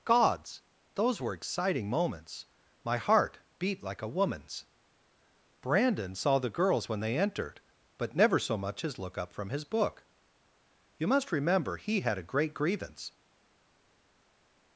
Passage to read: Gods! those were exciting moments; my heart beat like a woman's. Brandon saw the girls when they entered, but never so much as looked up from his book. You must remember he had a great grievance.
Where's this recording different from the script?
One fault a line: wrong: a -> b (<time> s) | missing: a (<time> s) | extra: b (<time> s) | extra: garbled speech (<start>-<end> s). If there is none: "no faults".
wrong: looked -> look (9.0 s)